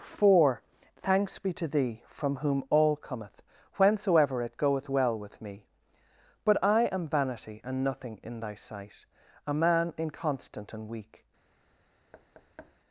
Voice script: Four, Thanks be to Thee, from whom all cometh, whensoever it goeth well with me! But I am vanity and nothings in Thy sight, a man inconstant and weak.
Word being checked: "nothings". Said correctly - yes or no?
no